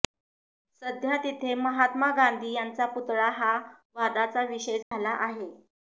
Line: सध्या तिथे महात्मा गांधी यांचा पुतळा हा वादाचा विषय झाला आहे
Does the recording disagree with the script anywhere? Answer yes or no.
no